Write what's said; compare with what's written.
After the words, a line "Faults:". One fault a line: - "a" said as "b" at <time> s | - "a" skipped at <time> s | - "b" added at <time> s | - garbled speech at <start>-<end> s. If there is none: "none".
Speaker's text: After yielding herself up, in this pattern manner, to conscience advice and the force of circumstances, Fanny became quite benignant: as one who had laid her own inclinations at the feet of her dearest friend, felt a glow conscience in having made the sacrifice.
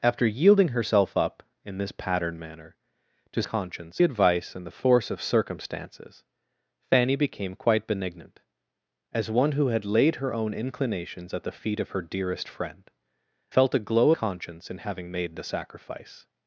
After yielding herself up, in this pattern manner, to conscience advice and the force of circumstances, Fanny became quite benignant: as one who had laid her own inclinations at the feet of her dearest friend, felt a glow conscience in having made the sacrifice.
Faults:
none